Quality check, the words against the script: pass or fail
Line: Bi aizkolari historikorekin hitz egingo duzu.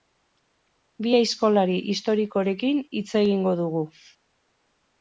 fail